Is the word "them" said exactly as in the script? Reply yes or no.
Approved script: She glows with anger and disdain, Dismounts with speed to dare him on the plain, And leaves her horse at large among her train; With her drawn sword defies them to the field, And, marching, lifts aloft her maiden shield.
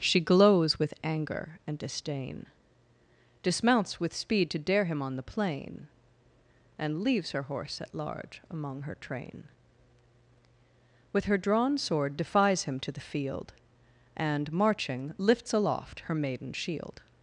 no